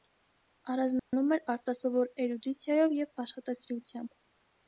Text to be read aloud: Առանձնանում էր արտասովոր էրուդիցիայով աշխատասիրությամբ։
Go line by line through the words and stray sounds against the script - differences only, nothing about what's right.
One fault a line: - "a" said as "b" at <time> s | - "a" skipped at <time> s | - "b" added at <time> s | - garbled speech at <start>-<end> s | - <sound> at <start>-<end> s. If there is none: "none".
- dropout at 1.0-1.1 s
- "և" added at 3.0 s